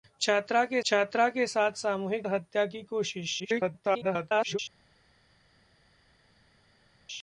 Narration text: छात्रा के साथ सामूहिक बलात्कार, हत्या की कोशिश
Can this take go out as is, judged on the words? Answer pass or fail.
fail